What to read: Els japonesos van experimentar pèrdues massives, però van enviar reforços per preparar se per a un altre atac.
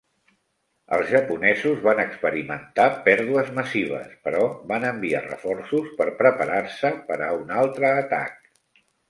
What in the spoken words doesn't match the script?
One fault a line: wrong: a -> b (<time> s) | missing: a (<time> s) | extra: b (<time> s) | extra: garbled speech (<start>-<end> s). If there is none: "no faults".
no faults